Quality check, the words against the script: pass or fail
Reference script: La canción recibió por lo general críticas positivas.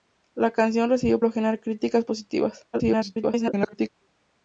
fail